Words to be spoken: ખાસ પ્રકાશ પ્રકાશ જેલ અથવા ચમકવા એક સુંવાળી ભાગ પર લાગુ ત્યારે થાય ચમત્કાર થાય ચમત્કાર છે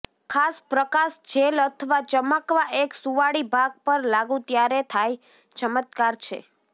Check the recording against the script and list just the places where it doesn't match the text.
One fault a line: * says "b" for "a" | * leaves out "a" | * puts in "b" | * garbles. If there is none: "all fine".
* leaves out "પ્રકાશ"
* leaves out "થાય ચમત્કાર"